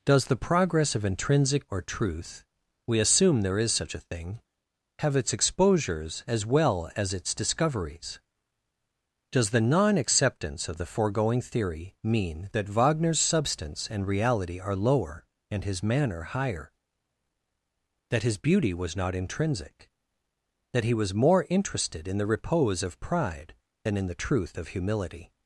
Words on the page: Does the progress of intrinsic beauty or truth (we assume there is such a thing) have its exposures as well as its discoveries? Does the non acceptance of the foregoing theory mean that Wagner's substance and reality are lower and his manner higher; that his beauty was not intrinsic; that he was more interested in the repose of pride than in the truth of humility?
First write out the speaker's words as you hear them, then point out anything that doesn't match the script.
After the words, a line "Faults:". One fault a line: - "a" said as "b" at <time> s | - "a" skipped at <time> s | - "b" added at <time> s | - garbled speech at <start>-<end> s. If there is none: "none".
Does the progress of intrinsic or truth (we assume there is such a thing) have its exposures as well as its discoveries? Does the non acceptance of the foregoing theory mean that Wagner's substance and reality are lower and his manner higher; that his beauty was not intrinsic; that he was more interested in the repose of pride than in the truth of humility?
Faults:
- "beauty" skipped at 1.7 s